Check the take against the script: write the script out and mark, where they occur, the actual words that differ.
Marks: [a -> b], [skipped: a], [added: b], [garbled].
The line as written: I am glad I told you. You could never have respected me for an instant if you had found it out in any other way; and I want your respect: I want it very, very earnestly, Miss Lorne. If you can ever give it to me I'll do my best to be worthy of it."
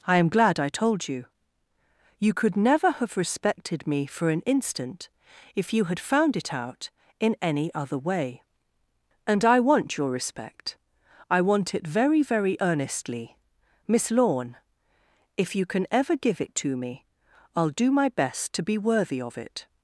I am glad I told you. You could never have respected me for an instant if you had found it out in any other way; and I want your respect: I want it very, very earnestly, Miss Lorne. If you can ever give it to me I'll do my best to be worthy of it."